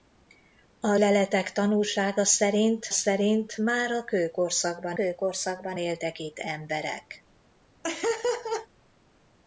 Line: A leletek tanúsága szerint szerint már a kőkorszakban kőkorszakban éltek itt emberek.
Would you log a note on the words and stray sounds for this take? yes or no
yes